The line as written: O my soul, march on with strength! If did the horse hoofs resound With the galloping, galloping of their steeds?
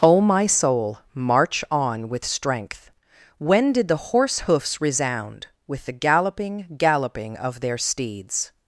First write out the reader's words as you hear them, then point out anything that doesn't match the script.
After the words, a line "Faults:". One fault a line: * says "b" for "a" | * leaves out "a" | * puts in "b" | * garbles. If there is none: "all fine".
O my soul, march on with strength! When did the horse hoofs resound With the galloping, galloping of their steeds?
Faults:
* says "When" for "If"